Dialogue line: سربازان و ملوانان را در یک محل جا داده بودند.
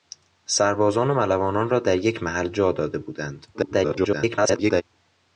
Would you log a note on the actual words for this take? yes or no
yes